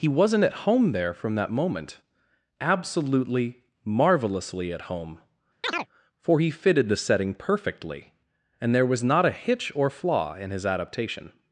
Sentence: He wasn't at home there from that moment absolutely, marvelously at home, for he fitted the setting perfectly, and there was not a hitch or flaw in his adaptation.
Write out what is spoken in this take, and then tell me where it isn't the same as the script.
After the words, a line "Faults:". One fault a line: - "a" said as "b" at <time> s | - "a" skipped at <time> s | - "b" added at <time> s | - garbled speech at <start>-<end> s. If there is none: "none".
He wasn't at home there from that moment absolutely, marvelously at home, for he fitted the setting perfectly, and there was not a hitch or flaw in his adaptation.
Faults:
none